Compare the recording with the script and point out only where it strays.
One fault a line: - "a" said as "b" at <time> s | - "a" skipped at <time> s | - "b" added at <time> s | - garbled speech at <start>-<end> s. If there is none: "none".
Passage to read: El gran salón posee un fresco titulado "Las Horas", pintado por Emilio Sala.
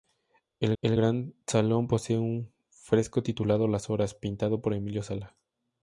- "el" added at 0.8 s